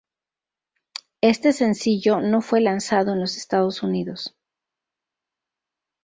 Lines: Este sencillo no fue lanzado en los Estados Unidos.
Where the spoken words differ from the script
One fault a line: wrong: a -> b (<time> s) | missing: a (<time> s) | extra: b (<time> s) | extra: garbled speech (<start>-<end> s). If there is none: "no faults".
no faults